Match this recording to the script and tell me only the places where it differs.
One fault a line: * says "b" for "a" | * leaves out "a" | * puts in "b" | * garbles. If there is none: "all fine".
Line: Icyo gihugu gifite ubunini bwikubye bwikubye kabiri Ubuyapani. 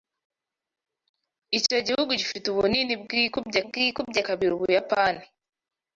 all fine